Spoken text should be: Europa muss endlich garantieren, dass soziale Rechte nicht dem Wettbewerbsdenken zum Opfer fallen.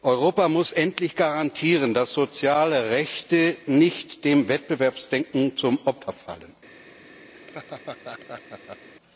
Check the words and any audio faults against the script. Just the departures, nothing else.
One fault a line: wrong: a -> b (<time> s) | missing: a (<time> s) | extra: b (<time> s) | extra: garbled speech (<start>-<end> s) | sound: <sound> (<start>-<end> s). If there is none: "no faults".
sound: laugh (7.3-8.9 s)